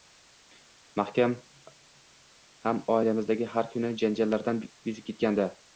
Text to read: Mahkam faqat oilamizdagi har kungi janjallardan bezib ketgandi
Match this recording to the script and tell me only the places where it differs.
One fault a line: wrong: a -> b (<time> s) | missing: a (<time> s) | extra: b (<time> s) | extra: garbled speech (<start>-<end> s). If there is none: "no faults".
wrong: faqat -> ham (2.7 s)